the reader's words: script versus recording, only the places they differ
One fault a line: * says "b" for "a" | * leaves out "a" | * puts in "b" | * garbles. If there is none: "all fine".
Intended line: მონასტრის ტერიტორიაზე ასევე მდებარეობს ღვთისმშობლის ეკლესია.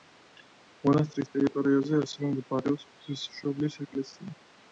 all fine